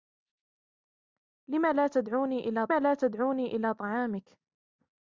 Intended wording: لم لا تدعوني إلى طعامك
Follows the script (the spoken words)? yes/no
no